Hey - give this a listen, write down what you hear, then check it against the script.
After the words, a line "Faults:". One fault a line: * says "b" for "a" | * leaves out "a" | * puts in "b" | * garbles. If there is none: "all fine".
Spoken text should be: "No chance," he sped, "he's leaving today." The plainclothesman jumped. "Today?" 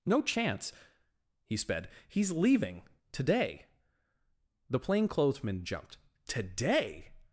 "No chance," he sped, "he's leaving today." The plainclothesman jumped. "Today?"
Faults:
all fine